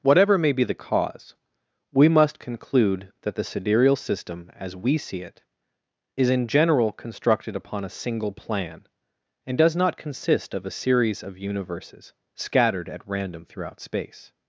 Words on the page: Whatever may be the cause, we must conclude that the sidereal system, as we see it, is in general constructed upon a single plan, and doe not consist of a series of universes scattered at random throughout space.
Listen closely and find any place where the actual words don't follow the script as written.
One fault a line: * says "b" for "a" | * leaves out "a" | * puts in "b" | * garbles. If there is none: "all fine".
* says "does" for "doe"